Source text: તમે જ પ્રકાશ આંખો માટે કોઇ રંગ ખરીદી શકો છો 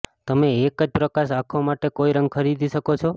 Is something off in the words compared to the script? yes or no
yes